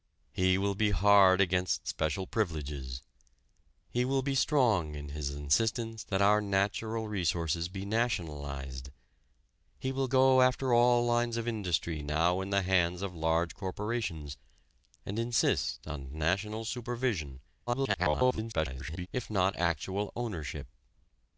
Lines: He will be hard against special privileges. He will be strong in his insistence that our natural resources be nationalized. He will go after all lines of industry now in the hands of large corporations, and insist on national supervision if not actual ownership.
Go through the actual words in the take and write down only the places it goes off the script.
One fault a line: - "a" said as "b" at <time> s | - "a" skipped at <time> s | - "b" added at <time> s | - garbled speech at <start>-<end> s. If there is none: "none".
- garbled speech at 17.7-19.1 s